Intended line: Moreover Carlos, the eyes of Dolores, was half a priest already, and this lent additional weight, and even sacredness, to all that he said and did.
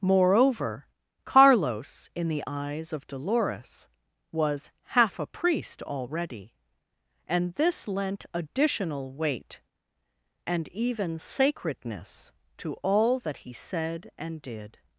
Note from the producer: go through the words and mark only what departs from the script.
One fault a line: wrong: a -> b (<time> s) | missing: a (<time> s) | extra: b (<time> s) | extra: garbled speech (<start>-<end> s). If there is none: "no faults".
extra: in (2.1 s)